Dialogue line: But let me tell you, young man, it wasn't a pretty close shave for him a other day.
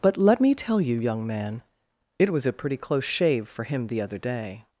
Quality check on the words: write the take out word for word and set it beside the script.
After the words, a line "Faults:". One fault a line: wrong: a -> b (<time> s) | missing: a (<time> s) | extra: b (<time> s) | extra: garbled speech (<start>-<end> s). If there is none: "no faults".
But let me tell you, young man, it was a pretty close shave for him the other day.
Faults:
wrong: wasn't -> was (2.3 s)
wrong: a -> the (3.9 s)